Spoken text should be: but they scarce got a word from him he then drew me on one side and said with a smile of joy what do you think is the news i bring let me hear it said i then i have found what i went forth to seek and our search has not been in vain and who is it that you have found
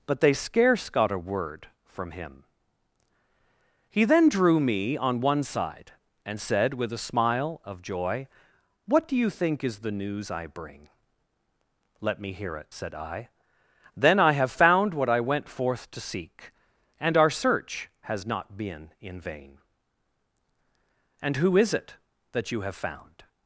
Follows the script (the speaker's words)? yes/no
yes